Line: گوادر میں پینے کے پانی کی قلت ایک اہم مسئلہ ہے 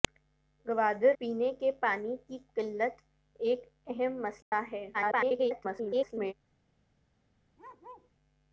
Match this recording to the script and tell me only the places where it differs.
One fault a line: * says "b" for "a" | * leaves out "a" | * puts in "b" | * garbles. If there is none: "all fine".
* leaves out "میں"
* garbles